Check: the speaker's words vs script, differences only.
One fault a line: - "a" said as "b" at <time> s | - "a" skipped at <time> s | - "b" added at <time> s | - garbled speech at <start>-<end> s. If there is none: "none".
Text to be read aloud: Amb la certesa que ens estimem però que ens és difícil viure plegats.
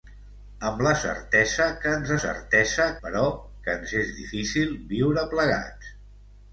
- "estimem" said as "certesa" at 2.2 s